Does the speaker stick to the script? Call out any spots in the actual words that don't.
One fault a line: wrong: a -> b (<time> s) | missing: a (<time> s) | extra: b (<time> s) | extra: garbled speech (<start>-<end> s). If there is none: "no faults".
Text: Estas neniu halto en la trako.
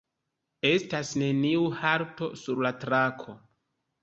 wrong: en -> sur (2.4 s)